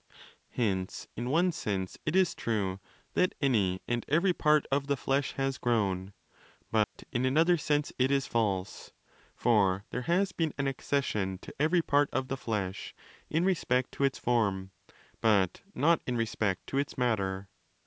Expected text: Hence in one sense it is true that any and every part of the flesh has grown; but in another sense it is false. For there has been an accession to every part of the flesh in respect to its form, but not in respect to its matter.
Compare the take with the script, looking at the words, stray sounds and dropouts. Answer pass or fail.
fail